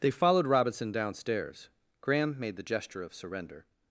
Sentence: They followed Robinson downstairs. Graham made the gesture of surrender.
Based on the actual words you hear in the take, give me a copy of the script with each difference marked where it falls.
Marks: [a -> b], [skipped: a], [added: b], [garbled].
They followed Robinson downstairs. Graham made the gesture of surrender.